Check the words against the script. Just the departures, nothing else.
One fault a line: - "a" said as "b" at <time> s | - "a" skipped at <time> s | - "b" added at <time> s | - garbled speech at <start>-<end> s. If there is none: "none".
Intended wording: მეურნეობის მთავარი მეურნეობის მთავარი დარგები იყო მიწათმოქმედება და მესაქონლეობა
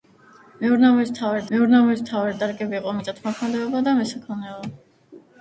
none